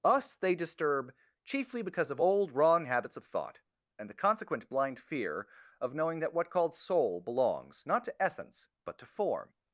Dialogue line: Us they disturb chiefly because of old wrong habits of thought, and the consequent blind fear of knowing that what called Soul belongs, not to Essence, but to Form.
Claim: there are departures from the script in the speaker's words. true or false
false